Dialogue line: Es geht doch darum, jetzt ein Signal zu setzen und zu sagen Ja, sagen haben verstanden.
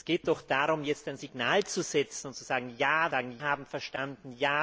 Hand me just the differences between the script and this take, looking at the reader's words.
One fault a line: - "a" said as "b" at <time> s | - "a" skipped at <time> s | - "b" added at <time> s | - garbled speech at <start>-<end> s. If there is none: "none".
none